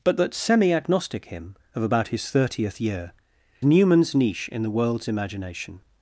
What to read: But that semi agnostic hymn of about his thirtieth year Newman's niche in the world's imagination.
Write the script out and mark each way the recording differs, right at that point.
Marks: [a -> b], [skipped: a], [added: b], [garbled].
But that semi agnostic hymn of about his thirtieth year Newman's niche in the world's imagination.